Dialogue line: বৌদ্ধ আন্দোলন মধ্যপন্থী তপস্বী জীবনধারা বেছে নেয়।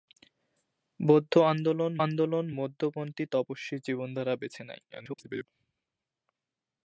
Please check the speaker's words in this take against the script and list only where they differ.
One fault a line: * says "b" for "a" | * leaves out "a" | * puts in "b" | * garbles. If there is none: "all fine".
* puts in "আন্দোলন"
* garbles